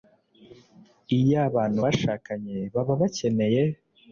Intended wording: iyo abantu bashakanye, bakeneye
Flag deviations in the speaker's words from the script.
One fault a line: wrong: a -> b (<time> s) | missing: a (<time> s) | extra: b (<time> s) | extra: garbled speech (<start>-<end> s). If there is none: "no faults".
extra: baba (2.7 s)